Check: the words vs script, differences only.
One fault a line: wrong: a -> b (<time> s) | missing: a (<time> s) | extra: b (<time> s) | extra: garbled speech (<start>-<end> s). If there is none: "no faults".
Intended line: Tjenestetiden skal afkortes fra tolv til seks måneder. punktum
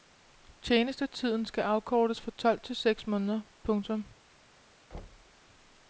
no faults